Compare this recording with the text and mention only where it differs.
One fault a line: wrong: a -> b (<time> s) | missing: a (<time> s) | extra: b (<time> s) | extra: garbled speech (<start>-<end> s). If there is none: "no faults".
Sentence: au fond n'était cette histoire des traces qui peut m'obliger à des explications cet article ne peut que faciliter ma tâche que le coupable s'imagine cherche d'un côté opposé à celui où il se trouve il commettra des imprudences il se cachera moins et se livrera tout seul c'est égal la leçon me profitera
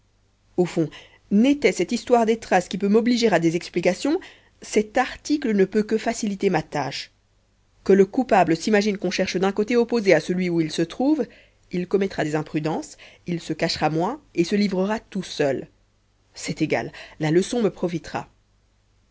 extra: qu'on (9.0 s)